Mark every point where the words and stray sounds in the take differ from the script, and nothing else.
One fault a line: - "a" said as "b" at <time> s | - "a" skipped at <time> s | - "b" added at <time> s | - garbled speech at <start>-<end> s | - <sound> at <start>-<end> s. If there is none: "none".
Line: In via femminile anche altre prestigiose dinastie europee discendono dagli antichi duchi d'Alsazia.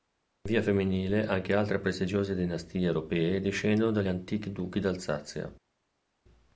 none